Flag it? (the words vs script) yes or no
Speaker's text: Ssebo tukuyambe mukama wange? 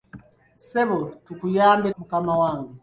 no